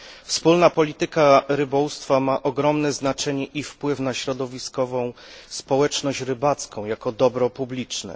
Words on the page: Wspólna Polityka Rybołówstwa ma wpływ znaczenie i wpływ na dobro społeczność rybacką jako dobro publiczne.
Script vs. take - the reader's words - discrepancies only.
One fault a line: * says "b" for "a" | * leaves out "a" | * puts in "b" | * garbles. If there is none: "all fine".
* says "ogromne" for "wpływ"
* says "środowiskową" for "dobro"